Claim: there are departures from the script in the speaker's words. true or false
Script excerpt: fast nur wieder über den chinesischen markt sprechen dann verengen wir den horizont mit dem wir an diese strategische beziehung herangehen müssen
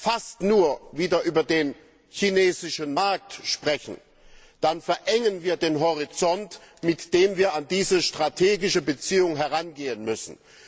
false